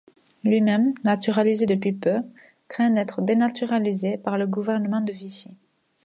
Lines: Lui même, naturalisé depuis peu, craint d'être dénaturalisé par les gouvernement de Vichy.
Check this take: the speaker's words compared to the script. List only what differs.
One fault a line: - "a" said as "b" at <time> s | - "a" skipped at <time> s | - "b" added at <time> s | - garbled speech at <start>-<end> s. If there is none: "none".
- "les" said as "le" at 4.4 s